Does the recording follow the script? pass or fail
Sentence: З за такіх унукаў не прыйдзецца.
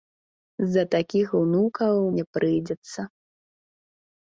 pass